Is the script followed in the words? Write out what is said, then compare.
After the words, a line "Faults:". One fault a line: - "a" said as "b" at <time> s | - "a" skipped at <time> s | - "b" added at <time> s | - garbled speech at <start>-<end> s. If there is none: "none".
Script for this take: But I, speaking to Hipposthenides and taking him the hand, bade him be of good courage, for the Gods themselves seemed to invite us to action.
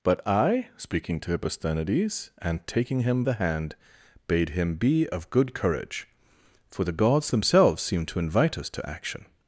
But I, speaking to Hipposthenides and taking him the hand, bade him be of good courage, for the Gods themselves seemed to invite us to action.
Faults:
none